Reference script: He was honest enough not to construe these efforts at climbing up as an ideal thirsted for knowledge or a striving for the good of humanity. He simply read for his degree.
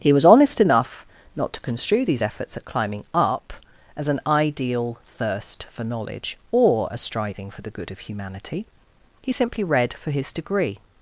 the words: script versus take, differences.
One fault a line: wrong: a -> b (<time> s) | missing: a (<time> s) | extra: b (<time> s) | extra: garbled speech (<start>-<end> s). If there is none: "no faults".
wrong: thirsted -> thirst (5.0 s)